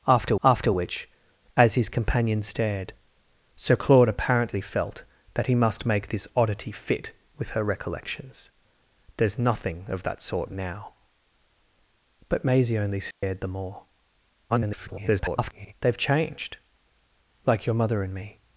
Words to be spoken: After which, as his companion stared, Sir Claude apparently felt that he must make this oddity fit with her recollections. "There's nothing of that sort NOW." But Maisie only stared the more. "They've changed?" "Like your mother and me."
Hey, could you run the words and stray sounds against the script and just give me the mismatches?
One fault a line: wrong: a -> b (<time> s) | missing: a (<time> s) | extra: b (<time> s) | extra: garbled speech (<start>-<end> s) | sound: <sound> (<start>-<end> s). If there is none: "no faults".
extra: after (0.4 s)
sound: dropout (13.1-13.2 s)
extra: garbled speech (14.5-15.7 s)